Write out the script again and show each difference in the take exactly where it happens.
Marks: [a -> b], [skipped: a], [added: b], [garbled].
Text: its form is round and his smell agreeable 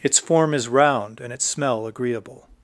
its form is round and [his -> its] smell agreeable